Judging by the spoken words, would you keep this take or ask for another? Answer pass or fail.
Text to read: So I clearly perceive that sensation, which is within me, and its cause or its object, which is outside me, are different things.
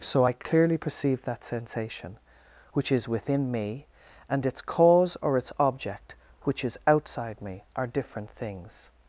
pass